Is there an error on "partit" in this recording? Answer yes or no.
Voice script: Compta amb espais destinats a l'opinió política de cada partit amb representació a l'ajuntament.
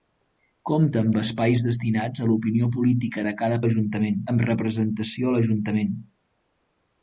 yes